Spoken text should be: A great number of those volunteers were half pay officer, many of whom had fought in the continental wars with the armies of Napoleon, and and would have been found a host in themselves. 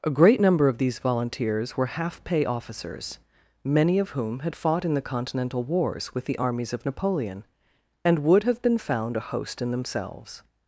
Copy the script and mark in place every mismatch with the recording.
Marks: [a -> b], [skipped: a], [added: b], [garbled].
A great number of [those -> these] volunteers were half pay [officer, -> officers] many of whom had fought in the continental wars with the armies of Napoleon, and [skipped: and] would have been found a host in themselves.